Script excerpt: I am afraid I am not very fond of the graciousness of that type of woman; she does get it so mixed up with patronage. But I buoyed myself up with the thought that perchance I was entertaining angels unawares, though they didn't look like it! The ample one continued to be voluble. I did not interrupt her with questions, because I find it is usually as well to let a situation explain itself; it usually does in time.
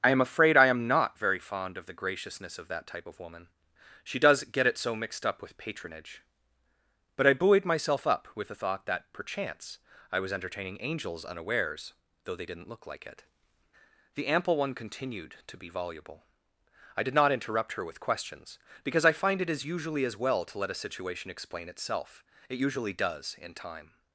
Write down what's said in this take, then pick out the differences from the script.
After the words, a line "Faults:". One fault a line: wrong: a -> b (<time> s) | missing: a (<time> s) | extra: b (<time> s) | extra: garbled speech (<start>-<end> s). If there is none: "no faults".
I am afraid I am not very fond of the graciousness of that type of woman; she does get it so mixed up with patronage. But I buoyed myself up with the thought that perchance I was entertaining angels unawares, though they didn't look like it! The ample one continued to be voluble. I did not interrupt her with questions, because I find it is usually as well to let a situation explain itself; it usually does in time.
Faults:
no faults